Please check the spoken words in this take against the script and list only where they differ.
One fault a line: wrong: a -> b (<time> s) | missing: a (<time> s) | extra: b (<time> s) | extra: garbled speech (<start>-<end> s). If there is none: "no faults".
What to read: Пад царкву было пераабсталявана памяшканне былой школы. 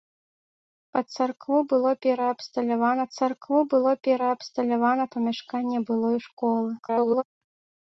extra: царкву было пераабсталявана (3.2 s)
extra: garbled speech (6.8-7.2 s)